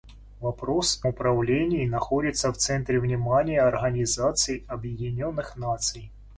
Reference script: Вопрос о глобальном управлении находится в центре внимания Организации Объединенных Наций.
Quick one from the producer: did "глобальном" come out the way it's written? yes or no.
no